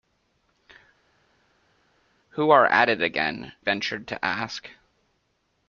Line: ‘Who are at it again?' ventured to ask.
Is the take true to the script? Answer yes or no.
yes